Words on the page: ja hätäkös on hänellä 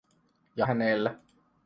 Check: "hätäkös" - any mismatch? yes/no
yes